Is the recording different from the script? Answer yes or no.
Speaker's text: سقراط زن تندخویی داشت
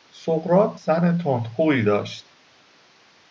no